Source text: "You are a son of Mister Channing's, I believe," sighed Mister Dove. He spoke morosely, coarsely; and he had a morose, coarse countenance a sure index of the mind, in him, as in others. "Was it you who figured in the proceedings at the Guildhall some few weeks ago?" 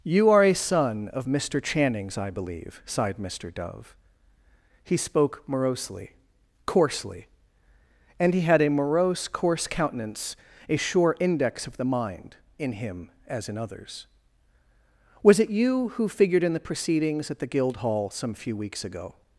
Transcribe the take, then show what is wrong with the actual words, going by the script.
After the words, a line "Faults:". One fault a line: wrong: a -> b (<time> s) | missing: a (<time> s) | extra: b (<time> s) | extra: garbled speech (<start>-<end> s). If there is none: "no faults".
"You are a son of Mister Channing's, I believe," sighed Mister Dove. He spoke morosely, coarsely; and he had a morose, coarse countenance a sure index of the mind, in him, as in others. "Was it you who figured in the proceedings at the Guildhall some few weeks ago?"
Faults:
no faults